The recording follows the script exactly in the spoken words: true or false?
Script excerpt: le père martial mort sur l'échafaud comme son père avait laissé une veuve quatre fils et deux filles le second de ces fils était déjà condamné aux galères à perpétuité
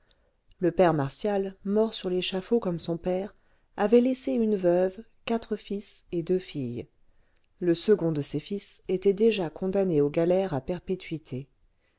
true